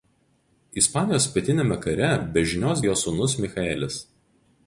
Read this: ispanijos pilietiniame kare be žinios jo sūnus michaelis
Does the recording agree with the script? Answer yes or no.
yes